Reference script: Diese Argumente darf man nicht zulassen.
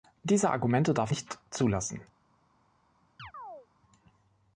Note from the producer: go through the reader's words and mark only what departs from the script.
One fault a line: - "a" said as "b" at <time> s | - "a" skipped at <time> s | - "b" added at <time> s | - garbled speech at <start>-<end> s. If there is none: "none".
- "man" skipped at 1.1 s